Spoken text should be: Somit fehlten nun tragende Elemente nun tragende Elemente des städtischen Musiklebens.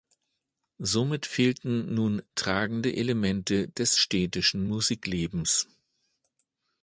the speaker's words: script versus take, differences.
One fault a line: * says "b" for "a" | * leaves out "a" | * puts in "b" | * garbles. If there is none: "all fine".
* leaves out "nun tragende Elemente"